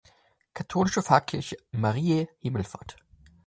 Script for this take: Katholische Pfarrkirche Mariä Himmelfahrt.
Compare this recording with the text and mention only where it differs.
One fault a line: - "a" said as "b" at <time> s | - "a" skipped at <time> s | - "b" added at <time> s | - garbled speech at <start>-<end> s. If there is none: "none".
none